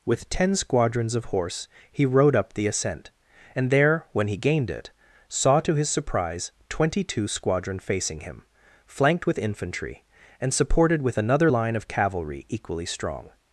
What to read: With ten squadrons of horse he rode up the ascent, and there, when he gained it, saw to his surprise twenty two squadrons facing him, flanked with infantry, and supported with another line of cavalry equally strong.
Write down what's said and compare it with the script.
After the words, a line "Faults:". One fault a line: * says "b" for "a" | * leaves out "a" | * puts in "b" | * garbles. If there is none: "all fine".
With ten squadrons of horse he rode up the ascent, and there, when he gained it, saw to his surprise twenty two squadron facing him, flanked with infantry, and supported with another line of cavalry equally strong.
Faults:
* says "squadron" for "squadrons"